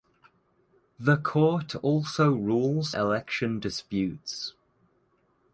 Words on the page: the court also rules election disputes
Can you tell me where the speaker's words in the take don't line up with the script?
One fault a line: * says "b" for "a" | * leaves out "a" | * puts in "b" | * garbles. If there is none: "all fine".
all fine